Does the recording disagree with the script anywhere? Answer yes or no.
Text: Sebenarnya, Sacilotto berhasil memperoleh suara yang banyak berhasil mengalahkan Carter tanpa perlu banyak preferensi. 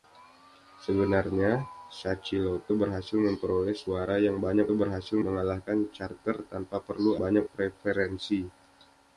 no